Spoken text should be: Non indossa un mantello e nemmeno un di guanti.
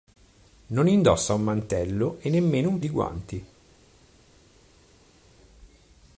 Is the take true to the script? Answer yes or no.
yes